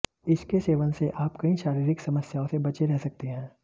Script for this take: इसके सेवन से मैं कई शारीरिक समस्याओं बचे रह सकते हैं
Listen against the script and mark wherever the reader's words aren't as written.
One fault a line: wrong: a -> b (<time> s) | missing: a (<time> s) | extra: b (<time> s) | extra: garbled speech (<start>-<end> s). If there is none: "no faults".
wrong: मैं -> आप (1.2 s)
extra: से (2.4 s)